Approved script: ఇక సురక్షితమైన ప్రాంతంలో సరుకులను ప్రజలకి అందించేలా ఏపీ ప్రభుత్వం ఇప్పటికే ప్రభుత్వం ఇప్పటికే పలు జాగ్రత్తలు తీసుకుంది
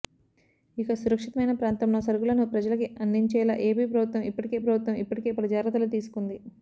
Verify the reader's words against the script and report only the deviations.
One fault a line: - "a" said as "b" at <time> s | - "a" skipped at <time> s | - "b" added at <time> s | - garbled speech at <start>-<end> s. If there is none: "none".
none